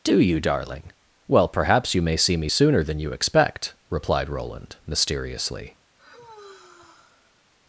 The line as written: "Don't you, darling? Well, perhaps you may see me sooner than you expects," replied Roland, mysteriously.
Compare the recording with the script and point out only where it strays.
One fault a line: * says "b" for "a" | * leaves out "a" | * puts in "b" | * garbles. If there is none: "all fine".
* says "Do" for "Don't"
* says "expect" for "expects"